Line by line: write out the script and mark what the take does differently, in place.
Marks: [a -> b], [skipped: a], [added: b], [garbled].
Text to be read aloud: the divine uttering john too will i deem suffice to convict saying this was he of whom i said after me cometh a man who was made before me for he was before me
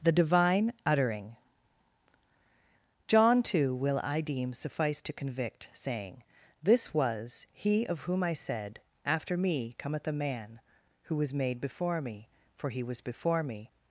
the divine uttering john too will i deem suffice to convict saying this was he of whom i said after me cometh a man who was made before me for he was before me